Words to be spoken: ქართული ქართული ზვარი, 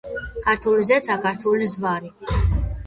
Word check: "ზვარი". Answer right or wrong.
right